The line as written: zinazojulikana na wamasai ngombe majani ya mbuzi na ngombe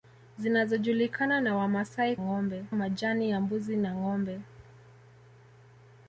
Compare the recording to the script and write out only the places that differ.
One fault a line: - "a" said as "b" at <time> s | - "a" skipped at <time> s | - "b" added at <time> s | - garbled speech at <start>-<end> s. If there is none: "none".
none